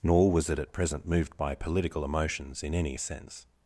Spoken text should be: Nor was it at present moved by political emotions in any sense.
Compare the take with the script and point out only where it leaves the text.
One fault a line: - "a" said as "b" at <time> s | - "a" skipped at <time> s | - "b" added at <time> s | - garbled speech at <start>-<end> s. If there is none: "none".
none